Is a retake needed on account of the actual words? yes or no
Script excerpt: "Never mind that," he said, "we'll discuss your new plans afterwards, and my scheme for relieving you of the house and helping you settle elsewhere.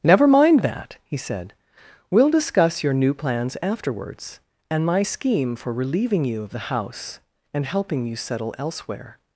no